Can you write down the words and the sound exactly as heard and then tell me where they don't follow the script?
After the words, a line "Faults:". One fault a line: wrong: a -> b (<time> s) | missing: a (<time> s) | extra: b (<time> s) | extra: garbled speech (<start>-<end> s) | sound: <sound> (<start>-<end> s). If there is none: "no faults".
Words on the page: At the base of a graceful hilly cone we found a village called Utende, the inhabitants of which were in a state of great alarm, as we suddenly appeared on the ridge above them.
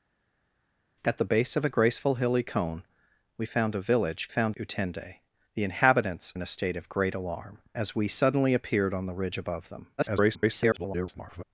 At the base of a graceful hilly cone we found a village found Utende, the inhabitants in a state of great alarm, as we suddenly appeared on the ridge above them. [garbled]
Faults:
wrong: called -> found (4.3 s)
missing: of which were (6.3 s)
extra: garbled speech (10.0-11.4 s)